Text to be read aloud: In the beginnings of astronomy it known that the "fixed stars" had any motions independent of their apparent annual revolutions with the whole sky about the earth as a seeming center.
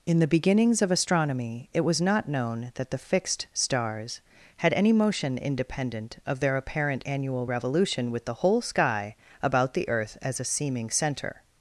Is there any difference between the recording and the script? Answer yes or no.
yes